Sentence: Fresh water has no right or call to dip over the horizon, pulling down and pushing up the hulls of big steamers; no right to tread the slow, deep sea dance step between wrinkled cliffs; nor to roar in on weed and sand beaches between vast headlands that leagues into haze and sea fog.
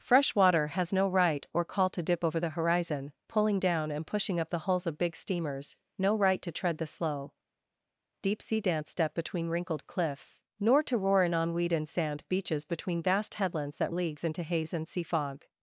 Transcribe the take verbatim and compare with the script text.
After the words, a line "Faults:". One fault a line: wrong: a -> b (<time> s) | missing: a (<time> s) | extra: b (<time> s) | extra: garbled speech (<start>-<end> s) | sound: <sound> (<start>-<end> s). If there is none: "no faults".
Fresh water has no right or call to dip over the horizon, pulling down and pushing up the hulls of big steamers; no right to tread the slow, deep sea dance step between wrinkled cliffs; nor to roar in on weed and sand beaches between vast headlands that leagues into haze and sea fog.
Faults:
no faults